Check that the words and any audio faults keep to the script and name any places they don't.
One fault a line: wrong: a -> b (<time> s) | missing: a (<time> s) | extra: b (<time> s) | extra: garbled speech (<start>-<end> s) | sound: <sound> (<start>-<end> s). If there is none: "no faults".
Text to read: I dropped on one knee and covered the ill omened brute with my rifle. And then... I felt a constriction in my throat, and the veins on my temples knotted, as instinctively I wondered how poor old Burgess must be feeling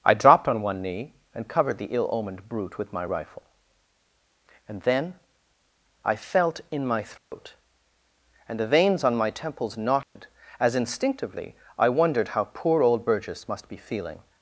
missing: a constriction (6.6 s)
sound: dropout (7.2-7.3 s)
sound: dropout (10.0-10.2 s)